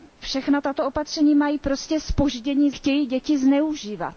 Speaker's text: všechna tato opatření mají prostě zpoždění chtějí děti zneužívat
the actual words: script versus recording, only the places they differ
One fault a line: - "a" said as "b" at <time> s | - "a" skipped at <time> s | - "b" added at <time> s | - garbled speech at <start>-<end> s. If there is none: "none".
none